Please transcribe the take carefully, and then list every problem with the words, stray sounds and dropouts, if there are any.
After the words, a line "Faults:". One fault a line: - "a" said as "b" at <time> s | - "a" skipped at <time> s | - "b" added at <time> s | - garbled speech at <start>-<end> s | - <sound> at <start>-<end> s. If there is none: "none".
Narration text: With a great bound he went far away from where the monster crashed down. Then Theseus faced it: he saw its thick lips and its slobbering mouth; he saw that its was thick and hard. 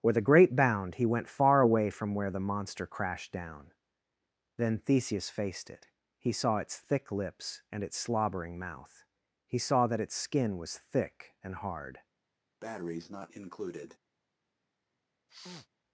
With a great bound he went far away from where the monster crashed down. Then Theseus faced it: he saw its thick lips and its slobbering mouth; he saw that its skin was thick and hard.
Faults:
- "skin" added at 10.1 s
- breath at 12.6-14.0 s
- sneeze at 15.3-15.7 s